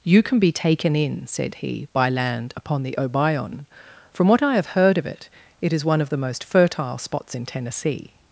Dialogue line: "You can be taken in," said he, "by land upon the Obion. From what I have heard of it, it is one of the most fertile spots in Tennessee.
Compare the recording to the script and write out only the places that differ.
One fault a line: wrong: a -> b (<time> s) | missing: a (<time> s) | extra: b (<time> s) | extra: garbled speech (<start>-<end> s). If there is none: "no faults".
no faults